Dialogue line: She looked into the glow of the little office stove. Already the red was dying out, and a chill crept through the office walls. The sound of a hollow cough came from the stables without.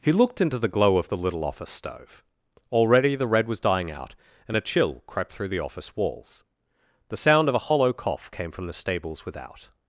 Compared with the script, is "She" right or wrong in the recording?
wrong